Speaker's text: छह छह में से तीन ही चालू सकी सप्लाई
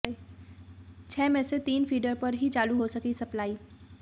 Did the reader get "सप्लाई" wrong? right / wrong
right